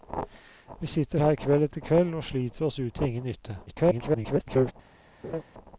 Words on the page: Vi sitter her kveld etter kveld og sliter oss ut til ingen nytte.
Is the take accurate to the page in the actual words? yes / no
no